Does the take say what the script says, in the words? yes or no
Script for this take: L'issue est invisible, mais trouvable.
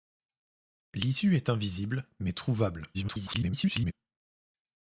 no